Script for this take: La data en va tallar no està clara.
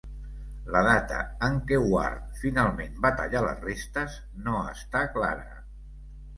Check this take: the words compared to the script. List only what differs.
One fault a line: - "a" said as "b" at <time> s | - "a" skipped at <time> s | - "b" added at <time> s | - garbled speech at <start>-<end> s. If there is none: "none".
- "què Ward finalment" added at 1.7 s
- "les restes" added at 3.5 s